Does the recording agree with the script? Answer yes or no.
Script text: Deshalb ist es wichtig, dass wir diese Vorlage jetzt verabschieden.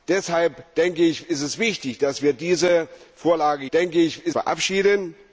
no